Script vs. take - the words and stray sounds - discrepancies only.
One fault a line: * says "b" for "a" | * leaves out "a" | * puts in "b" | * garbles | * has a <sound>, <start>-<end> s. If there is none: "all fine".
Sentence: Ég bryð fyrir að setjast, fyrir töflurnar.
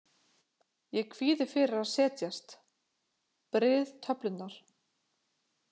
* says "kvíði" for "bryð"
* says "bryð" for "fyrir"